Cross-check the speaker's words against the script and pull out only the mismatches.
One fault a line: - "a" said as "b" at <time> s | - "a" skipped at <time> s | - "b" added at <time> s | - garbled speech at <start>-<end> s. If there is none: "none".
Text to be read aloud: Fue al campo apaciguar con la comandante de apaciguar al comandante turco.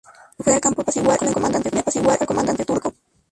none